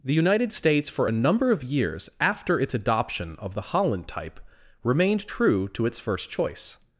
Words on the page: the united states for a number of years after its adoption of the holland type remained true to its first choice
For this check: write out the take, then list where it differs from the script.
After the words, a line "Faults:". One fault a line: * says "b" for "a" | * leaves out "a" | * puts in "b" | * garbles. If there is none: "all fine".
the united states for a number of years after its adoption of the holland type remained true to its first choice
Faults:
all fine